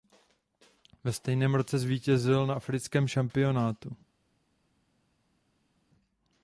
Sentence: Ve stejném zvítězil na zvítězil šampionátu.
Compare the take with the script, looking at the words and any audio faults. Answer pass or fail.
fail